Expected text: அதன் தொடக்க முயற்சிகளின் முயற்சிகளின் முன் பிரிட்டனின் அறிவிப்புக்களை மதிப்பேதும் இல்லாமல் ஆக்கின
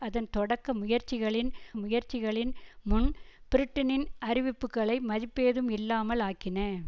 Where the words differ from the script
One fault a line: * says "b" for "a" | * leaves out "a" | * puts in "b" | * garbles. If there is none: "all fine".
all fine